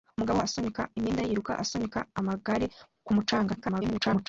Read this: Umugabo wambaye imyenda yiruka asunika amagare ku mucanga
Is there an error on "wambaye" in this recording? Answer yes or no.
yes